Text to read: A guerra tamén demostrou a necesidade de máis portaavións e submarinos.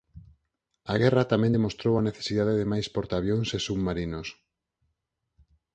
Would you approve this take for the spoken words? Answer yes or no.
yes